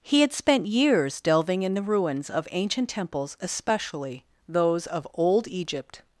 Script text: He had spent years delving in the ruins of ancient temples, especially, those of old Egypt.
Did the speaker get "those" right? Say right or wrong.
right